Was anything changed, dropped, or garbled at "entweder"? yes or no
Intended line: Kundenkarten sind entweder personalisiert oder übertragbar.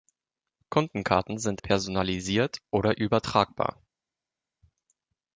yes